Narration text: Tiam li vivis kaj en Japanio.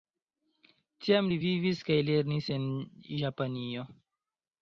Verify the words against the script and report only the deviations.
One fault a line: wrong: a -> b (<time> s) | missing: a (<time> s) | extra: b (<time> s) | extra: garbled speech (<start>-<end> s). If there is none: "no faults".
extra: lernis (2.1 s)